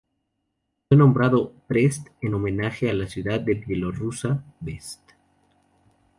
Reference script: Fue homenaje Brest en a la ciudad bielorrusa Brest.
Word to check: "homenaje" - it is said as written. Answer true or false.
false